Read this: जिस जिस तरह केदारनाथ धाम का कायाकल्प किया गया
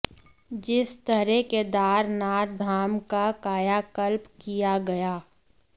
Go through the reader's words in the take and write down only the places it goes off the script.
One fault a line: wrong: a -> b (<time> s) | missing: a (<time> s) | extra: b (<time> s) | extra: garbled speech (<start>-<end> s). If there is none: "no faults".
missing: जिस (0.9 s)